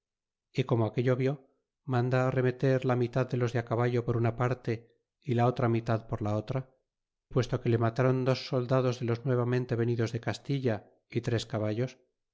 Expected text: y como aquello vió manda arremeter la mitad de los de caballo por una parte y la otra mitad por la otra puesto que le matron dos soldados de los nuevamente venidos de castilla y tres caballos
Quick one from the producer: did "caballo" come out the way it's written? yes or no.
yes